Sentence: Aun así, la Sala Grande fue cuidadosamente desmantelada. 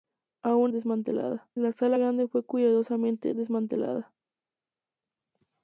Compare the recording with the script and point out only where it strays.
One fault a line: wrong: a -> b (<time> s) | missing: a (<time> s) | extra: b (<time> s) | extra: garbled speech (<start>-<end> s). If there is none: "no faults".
wrong: así -> desmantelada (0.7 s)